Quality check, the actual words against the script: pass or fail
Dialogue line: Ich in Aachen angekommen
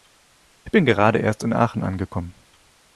fail